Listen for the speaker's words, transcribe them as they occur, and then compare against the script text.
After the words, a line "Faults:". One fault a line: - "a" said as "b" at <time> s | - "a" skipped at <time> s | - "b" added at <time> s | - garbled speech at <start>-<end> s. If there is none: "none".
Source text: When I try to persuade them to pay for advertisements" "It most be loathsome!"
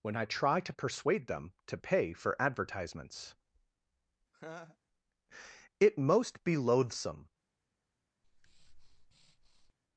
When I try to persuade them to pay for advertisements" "It most be loathsome!"
Faults:
none